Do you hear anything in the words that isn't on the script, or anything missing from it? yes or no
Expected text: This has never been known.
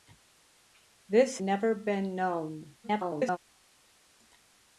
yes